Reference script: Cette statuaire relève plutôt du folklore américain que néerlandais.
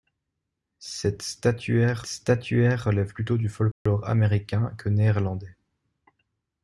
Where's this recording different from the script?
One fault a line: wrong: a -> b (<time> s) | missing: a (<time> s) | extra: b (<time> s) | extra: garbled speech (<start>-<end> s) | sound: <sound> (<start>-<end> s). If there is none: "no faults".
extra: statuaire (2.1 s)
sound: dropout (3.7-3.9 s)